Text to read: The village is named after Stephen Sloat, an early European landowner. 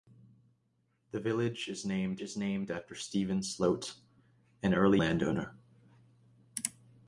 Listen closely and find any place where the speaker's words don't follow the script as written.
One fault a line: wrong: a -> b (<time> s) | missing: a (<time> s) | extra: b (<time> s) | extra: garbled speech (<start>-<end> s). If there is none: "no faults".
extra: is named (2.2 s)
missing: European (5.0 s)